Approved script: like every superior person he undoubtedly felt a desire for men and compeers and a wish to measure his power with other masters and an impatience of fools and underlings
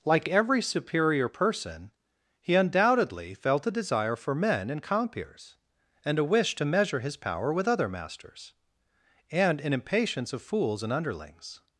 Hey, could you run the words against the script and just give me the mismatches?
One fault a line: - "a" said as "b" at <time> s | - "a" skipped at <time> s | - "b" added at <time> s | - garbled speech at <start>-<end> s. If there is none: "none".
none